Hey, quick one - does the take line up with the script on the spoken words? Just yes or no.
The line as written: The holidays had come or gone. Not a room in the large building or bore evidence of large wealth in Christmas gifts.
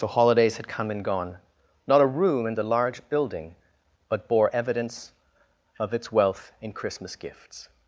no